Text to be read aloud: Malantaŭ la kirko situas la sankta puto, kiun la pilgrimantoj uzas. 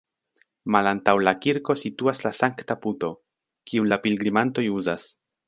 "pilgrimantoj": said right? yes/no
yes